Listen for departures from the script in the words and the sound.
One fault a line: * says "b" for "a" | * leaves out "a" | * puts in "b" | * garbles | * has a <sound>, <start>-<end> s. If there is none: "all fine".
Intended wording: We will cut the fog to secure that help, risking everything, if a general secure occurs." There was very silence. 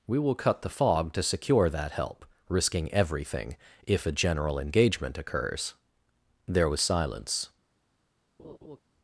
* says "engagement" for "secure"
* leaves out "very"
* has a laugh, 8.4-8.8 s